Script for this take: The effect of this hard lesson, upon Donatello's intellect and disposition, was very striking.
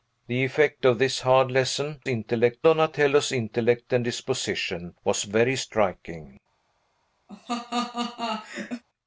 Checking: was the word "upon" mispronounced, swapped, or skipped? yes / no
yes